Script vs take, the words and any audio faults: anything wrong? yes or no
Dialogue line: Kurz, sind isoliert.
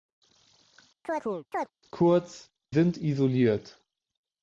yes